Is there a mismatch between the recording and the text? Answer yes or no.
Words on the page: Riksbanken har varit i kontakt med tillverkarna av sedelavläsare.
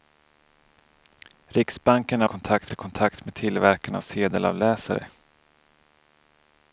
yes